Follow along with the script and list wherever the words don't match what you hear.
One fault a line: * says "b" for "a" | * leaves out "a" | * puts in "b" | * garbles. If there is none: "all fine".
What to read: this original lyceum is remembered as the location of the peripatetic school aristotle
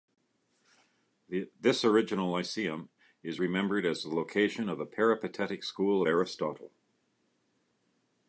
all fine